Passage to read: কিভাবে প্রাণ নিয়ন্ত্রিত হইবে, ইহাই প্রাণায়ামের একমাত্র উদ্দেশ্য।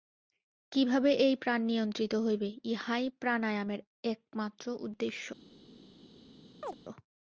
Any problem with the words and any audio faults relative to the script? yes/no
yes